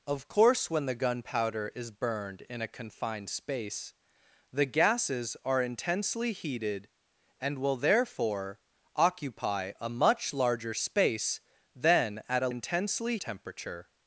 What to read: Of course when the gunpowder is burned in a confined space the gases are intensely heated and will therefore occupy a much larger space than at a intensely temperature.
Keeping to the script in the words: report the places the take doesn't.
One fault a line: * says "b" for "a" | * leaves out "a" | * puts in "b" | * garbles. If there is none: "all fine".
all fine